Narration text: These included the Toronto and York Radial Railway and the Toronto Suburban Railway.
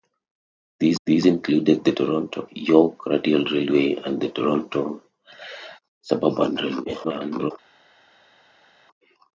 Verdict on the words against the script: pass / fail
fail